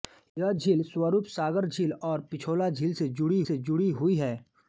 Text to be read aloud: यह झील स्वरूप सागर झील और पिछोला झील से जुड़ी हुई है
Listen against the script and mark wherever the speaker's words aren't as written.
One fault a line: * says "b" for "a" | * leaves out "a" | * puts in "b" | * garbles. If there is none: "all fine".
* puts in "से जुड़ी"